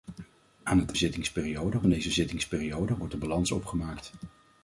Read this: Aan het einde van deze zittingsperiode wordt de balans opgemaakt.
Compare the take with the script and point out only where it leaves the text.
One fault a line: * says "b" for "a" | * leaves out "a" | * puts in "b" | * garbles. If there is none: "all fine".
* says "zittingsperiode" for "einde"